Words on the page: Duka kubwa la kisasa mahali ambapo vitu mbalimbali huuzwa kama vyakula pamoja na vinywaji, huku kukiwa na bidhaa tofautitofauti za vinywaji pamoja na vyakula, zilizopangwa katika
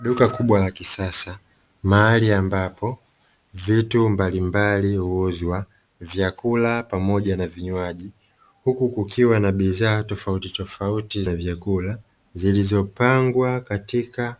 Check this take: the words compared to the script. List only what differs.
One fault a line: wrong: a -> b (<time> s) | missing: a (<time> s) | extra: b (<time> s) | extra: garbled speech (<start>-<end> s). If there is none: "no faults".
missing: kama (5.7 s)
missing: za vinywaji pamoja (11.2 s)